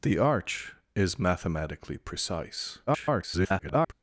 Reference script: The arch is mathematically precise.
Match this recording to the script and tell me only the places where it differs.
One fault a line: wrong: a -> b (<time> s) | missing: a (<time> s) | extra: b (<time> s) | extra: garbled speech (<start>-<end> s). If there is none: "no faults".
extra: garbled speech (2.9-3.9 s)